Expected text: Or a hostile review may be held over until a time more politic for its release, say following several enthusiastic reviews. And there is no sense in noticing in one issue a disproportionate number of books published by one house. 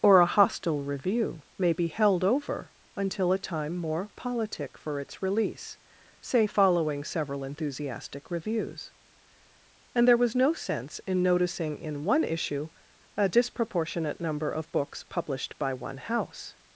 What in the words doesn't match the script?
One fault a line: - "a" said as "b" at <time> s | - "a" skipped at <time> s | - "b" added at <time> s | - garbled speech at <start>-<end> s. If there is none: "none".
- "is" said as "was" at 10.2 s